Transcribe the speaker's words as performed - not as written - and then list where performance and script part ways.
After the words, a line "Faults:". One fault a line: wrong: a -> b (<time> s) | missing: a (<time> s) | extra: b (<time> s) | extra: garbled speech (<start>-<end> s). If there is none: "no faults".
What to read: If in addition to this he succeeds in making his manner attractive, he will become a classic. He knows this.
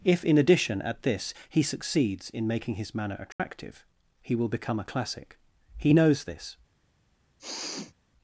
If in addition at this he succeeds in making his manner attractive, he will become a classic. He knows this.
Faults:
wrong: to -> at (0.8 s)